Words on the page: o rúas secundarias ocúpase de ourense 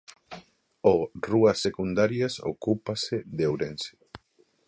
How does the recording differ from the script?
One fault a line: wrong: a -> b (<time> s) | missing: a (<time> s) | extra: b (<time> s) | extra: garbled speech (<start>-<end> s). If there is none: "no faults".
no faults